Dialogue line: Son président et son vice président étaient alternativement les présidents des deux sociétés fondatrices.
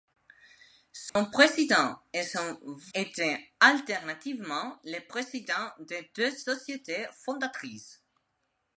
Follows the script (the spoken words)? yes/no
no